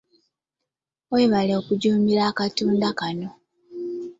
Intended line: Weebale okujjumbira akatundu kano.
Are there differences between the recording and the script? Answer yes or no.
no